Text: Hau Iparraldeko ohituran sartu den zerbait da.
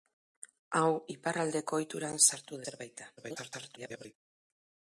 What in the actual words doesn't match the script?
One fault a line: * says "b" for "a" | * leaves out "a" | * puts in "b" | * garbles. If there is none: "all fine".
* leaves out "den"
* garbles